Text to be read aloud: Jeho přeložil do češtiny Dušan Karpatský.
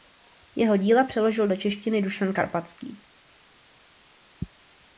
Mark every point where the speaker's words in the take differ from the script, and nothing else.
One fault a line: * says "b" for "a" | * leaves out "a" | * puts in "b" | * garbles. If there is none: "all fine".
* puts in "díla"